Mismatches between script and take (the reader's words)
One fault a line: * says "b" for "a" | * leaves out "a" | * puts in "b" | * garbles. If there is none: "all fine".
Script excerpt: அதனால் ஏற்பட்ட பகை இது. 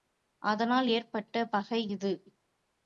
all fine